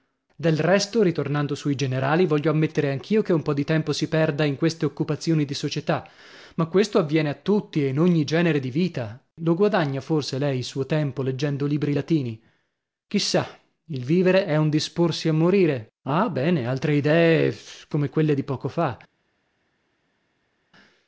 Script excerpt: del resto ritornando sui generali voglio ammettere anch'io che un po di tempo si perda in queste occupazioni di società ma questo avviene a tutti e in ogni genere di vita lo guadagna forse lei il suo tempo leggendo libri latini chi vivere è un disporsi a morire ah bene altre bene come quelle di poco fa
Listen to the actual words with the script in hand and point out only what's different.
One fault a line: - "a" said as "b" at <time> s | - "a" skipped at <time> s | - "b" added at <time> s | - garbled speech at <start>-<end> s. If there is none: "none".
- "sa il" added at 13.2 s
- "bene" said as "idee" at 17.0 s